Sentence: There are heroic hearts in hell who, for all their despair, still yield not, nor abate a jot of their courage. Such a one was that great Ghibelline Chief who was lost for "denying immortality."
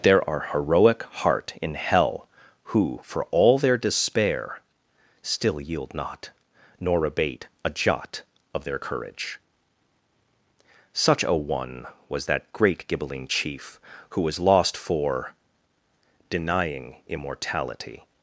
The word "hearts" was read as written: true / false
false